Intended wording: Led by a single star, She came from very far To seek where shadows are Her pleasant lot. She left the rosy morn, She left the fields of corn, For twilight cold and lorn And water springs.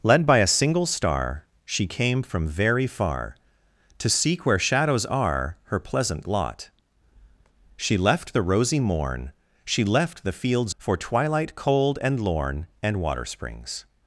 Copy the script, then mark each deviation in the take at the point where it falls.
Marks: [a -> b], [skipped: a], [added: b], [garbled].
Led by a single star, She came from very far To seek where shadows are Her pleasant lot. She left the rosy morn, She left the fields [skipped: of corn,] For twilight cold and lorn And water springs.